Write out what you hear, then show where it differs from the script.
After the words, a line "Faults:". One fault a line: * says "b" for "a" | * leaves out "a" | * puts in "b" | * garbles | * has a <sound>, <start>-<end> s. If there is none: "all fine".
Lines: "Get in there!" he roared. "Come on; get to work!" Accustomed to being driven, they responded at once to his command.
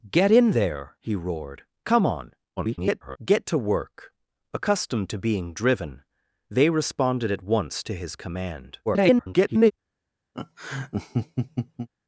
"Get in there!" he roared. "Come on; [garbled] get to work!" Accustomed to being driven, they responded at once to his command. [garbled]
Faults:
* garbles
* garbles
* has a laugh, 10.3-11.9 s